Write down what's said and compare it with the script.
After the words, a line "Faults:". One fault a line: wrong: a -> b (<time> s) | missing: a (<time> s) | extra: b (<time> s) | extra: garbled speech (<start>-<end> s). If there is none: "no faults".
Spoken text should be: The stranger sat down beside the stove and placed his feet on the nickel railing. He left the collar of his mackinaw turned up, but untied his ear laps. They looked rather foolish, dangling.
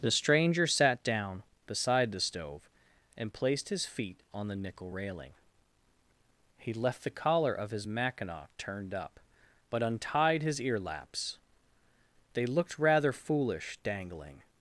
The stranger sat down beside the stove and placed his feet on the nickel railing. He left the collar of his mackinaw turned up, but untied his ear laps. They looked rather foolish, dangling.
Faults:
no faults